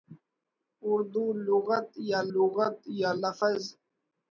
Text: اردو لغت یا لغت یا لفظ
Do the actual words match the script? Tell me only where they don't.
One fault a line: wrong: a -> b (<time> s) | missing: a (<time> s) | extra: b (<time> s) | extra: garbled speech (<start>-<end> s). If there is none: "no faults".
no faults